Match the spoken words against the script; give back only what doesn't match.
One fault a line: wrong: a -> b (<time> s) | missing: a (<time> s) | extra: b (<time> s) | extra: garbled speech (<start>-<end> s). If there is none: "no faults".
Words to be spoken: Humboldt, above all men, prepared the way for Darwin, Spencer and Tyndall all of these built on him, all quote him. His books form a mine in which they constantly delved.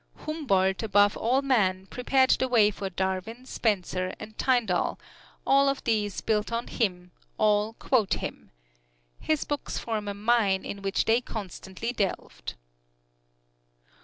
no faults